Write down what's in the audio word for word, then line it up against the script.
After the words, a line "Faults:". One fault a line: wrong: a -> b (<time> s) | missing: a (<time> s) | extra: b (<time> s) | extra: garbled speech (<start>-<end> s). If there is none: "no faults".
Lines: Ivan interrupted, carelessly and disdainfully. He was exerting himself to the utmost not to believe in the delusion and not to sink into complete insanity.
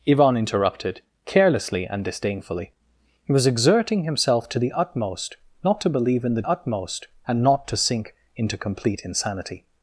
Ivan interrupted, carelessly and disdainfully. He was exerting himself to the utmost not to believe in the utmost and not to sink into complete insanity.
Faults:
wrong: delusion -> utmost (6.4 s)